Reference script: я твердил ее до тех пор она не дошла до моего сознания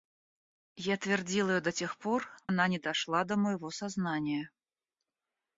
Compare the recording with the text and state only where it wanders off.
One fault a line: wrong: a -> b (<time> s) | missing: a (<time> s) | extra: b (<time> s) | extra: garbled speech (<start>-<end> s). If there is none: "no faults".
no faults